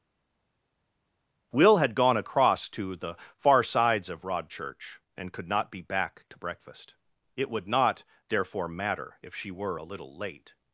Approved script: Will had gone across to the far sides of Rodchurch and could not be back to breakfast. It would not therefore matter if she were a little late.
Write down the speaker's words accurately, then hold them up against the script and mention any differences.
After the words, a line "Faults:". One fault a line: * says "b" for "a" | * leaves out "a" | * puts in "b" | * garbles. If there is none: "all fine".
Will had gone across to the far sides of Rodchurch and could not be back to breakfast. It would not therefore matter if she were a little late.
Faults:
all fine